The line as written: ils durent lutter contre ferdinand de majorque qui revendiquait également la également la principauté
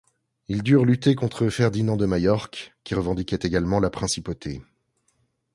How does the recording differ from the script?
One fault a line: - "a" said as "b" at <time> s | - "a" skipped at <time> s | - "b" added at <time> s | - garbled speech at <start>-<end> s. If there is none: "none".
- "également la" skipped at 3.9 s